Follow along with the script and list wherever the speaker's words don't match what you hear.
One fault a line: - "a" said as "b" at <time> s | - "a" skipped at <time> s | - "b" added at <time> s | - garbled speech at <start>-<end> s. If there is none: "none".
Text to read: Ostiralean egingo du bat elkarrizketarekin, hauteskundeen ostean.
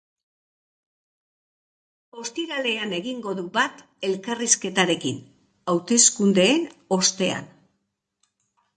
none